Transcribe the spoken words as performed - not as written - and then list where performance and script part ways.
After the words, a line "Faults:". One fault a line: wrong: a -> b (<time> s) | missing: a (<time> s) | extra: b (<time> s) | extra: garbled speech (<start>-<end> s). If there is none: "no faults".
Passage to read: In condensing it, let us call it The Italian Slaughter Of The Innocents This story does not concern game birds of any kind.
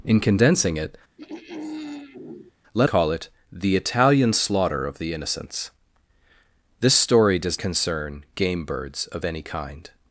In condensing it, let call it The Italian Slaughter Of The Innocents This story does concern game birds of any kind.
Faults:
missing: us (2.9 s)
missing: not (7.6 s)